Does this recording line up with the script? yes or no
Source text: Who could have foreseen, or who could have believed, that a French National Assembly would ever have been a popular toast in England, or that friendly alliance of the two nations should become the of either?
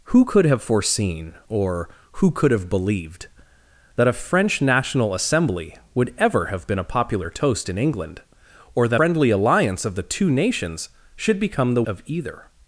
yes